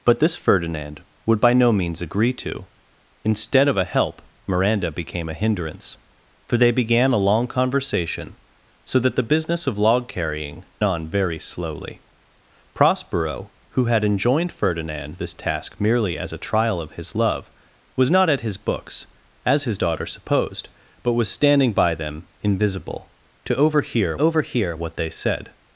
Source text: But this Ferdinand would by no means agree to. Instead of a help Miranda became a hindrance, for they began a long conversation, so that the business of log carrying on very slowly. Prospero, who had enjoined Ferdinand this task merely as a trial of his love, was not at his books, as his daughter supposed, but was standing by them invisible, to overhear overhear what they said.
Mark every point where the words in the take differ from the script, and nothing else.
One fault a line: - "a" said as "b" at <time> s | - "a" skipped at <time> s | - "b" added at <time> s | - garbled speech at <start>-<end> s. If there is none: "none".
none